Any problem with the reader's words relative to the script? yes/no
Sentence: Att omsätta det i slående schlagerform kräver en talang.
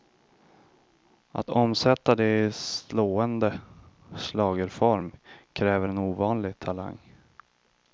yes